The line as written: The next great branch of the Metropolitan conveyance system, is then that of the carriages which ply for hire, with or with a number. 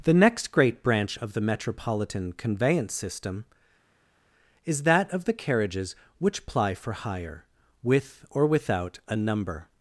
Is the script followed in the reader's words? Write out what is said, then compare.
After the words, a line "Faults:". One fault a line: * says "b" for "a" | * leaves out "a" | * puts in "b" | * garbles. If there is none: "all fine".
The next great branch of the Metropolitan conveyance system, is that of the carriages which ply for hire, with or without a number.
Faults:
* leaves out "then"
* says "without" for "with"